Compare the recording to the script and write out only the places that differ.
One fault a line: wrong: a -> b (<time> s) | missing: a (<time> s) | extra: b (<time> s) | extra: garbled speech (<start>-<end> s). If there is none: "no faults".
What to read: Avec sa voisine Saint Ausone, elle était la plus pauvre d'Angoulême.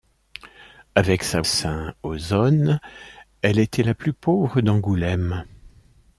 missing: voisine (1.4 s)